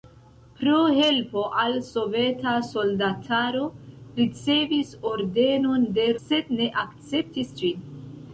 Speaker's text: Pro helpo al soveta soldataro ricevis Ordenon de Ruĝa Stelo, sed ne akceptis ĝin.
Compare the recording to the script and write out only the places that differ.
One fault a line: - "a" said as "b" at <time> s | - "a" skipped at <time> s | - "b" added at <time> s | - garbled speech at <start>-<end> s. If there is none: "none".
- "Ruĝa Stelo" skipped at 6.1 s